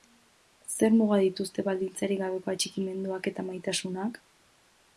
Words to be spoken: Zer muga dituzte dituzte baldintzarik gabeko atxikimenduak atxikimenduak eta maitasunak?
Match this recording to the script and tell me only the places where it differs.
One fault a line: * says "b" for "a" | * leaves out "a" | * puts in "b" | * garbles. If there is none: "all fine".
* leaves out "dituzte"
* leaves out "atxikimenduak"